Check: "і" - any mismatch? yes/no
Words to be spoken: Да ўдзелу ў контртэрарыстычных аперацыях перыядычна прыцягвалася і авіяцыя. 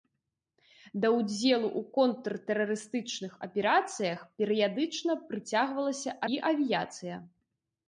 no